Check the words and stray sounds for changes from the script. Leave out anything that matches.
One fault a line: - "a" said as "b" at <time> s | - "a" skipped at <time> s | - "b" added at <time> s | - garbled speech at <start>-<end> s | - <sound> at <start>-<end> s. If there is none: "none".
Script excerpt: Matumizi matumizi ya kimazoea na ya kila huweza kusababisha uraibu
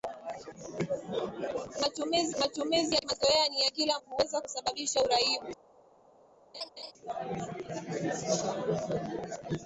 - laugh at 6.5-6.9 s